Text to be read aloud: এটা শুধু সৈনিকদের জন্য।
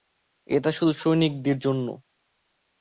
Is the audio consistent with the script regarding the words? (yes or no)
yes